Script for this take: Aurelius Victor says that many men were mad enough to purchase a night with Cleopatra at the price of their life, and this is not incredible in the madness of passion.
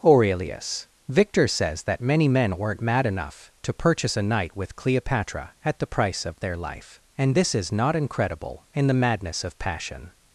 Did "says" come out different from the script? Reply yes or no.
no